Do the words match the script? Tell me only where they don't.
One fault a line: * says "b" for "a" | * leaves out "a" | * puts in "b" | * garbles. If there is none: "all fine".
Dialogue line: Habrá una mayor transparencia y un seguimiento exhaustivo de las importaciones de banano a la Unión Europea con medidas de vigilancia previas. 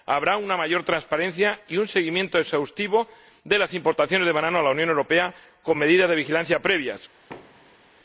all fine